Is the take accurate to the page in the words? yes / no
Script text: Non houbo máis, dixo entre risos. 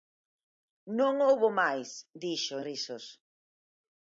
no